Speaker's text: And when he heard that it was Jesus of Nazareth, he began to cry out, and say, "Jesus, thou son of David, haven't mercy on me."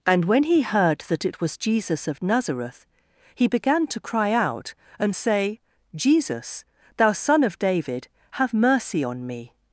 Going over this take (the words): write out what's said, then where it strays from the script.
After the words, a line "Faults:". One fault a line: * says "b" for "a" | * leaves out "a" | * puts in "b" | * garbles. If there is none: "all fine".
And when he heard that it was Jesus of Nazareth, he began to cry out, and say, "Jesus, thou son of David, have mercy on me."
Faults:
* says "have" for "haven't"